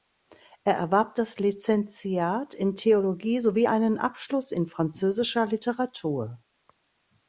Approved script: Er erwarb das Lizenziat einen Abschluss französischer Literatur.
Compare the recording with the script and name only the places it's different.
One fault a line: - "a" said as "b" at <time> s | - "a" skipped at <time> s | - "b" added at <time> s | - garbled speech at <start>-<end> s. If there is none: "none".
- "in Theologie sowie" added at 2.5 s
- "in" added at 4.5 s